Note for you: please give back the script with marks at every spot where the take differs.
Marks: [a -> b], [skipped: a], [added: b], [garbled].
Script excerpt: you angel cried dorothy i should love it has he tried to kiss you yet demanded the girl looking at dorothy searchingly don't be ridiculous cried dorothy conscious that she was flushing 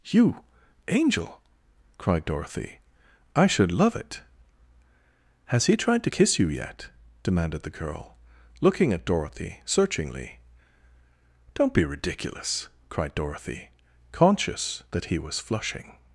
you angel cried dorothy i should love it has he tried to kiss you yet demanded the girl looking at dorothy searchingly don't be ridiculous cried dorothy conscious that [she -> he] was flushing